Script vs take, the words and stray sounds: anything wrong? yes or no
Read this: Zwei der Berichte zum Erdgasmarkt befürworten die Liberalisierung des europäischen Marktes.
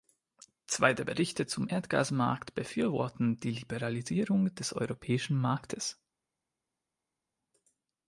no